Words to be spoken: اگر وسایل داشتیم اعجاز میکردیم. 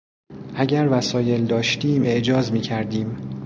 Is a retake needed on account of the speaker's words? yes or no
no